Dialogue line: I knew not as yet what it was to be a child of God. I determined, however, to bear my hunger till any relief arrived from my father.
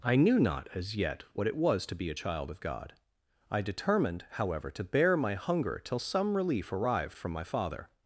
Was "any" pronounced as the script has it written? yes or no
no